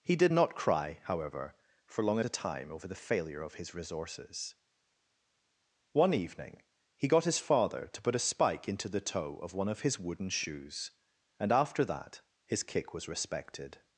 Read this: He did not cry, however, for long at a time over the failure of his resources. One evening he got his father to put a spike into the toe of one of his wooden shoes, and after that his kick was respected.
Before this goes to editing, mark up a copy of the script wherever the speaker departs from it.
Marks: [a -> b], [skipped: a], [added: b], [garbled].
He did not cry, however, for long at a time over the failure of his resources. One evening he got his father to put a spike into the toe of one of his wooden shoes, and after that his kick was respected.